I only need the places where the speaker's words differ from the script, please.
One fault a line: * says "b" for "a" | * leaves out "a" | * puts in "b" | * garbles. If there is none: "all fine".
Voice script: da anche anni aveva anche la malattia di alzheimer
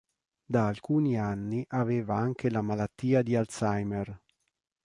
* says "alcuni" for "anche"